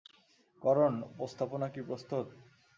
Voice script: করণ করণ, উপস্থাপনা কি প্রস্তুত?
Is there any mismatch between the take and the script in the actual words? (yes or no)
yes